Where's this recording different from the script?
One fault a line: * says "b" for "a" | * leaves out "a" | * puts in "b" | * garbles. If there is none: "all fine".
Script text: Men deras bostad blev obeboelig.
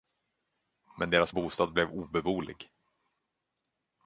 all fine